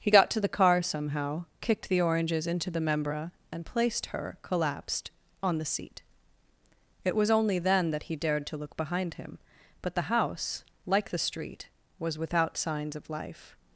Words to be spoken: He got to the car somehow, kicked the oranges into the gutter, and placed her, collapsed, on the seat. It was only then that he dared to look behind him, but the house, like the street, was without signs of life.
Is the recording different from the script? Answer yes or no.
yes